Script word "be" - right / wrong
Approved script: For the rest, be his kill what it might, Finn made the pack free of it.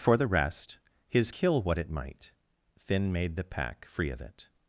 wrong